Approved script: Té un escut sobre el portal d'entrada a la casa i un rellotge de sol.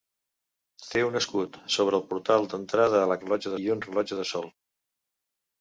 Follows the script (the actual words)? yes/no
no